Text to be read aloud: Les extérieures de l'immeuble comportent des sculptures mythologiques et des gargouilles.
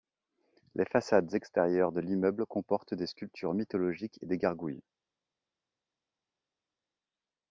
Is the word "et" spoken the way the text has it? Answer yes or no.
yes